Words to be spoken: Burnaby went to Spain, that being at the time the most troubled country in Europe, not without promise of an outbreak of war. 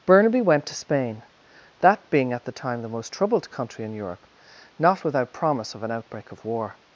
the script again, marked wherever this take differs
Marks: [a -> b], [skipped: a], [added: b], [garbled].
Burnaby went to Spain, that being at the time the most troubled country in Europe, not without promise of an outbreak of war.